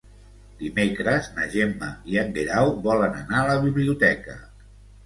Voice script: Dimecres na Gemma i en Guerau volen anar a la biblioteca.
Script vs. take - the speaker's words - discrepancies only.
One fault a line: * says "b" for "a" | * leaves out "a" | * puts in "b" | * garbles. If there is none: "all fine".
all fine